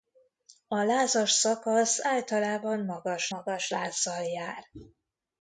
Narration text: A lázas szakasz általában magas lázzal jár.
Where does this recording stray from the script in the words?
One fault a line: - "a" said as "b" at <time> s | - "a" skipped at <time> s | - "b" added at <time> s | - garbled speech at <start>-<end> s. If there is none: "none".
- "magas" added at 3.3 s